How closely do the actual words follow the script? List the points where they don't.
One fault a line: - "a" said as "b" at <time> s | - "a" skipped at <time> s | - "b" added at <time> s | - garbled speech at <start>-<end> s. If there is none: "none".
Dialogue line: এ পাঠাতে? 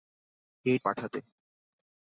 none